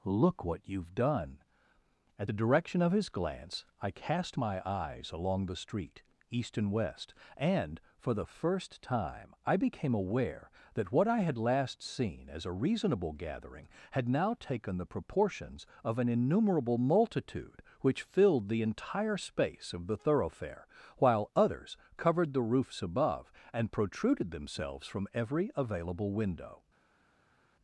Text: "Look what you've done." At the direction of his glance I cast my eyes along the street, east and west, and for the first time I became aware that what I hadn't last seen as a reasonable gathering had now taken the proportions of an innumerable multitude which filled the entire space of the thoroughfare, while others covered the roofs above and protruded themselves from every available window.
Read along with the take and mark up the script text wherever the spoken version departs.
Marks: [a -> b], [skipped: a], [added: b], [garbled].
"Look what you've done." At the direction of his glance I cast my eyes along the street, east and west, and for the first time I became aware that what I [hadn't -> had] last seen as a reasonable gathering had now taken the proportions of an innumerable multitude which filled the entire space of the thoroughfare, while others covered the roofs above and protruded themselves from every available window.